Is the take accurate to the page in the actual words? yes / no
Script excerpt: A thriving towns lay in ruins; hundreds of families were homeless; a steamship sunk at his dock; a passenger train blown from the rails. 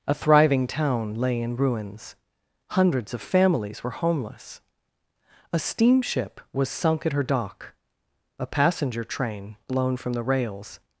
no